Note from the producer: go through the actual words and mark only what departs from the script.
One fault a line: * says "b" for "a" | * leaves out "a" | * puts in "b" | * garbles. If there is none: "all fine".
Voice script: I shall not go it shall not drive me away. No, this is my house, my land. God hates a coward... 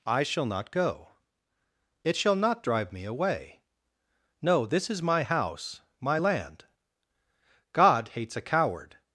all fine